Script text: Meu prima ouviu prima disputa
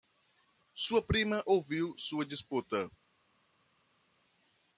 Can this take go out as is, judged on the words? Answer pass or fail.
fail